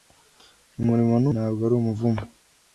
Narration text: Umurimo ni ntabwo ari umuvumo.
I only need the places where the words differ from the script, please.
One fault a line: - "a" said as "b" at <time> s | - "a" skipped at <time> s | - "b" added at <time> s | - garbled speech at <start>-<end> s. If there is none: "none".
none